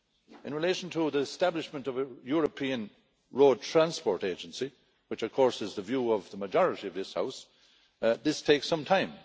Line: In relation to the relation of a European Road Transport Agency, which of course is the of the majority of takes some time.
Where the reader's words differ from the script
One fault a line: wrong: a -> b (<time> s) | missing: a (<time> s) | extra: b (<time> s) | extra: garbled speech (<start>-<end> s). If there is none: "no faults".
wrong: relation -> establishment (1.2 s)
extra: view (5.8 s)
extra: this House this (7.0 s)